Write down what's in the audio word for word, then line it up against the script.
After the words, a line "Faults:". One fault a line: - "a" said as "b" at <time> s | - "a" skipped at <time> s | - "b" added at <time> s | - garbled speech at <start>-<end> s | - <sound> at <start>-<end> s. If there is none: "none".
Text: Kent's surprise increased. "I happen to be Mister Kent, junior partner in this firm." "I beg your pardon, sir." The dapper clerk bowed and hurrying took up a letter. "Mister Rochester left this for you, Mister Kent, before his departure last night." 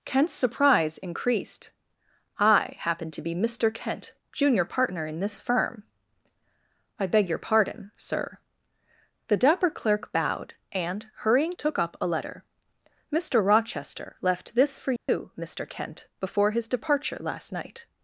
Kent's surprise increased. "I happen to be Mister Kent, junior partner in this firm." "I beg your pardon, sir." The dapper clerk bowed and hurrying took up a letter. "Mister Rochester left this for you, Mister Kent, before his departure last night."
Faults:
- dropout at 15.0-15.1 s